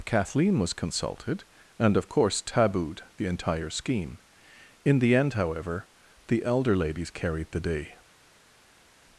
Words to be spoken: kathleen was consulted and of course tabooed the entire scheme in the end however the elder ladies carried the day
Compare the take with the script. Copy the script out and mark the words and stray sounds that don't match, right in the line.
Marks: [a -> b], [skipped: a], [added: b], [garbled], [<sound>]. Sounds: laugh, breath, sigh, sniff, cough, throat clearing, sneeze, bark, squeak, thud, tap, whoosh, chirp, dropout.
kathleen was consulted and of course tabooed the entire scheme in the end however the elder ladies carried the day